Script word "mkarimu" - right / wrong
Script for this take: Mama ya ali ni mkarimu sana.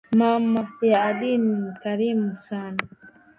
right